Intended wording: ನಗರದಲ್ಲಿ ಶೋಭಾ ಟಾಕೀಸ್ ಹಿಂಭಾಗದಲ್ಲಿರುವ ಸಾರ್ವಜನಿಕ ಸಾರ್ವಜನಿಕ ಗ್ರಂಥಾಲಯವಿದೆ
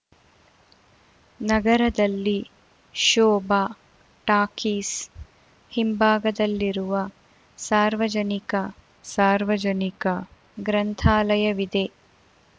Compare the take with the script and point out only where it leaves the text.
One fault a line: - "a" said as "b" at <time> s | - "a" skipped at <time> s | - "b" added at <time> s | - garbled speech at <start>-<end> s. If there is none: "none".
none